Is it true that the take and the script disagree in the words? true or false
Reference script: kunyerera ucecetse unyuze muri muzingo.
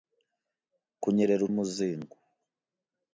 true